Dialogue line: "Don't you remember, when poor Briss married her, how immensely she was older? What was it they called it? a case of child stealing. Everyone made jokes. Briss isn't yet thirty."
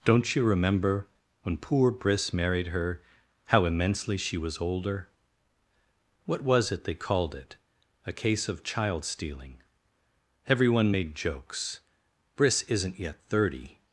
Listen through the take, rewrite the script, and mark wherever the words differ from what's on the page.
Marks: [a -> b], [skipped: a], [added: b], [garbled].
"Don't you remember, when poor Briss married her, how immensely she was older? What was it they called it? a case of child stealing. Everyone made jokes. Briss isn't yet thirty."